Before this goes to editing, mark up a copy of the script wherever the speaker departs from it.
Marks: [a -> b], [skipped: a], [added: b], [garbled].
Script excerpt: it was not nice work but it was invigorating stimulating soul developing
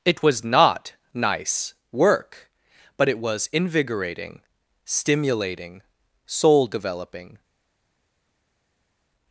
it was not nice work but it was invigorating stimulating soul developing